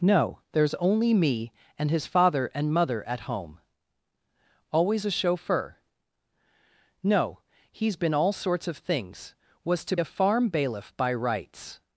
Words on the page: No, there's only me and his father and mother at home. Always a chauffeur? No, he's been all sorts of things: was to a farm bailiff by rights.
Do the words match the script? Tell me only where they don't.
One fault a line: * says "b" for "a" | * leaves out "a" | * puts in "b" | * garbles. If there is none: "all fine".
all fine